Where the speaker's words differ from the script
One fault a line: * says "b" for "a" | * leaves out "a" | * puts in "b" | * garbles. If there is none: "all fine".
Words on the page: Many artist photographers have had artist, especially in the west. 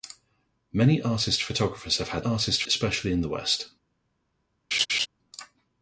all fine